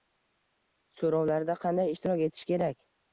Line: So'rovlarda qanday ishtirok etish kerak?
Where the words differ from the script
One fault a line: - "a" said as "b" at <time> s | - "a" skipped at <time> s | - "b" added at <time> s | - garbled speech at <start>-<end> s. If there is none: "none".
none